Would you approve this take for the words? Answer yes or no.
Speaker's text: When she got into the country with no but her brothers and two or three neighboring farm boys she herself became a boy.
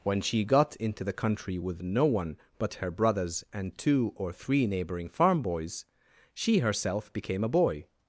no